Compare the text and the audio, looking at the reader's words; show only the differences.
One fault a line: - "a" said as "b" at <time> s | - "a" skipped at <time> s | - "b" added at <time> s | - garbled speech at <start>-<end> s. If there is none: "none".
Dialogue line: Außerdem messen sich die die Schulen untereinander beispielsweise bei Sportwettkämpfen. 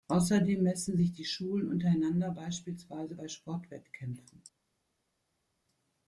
- "die" skipped at 1.2 s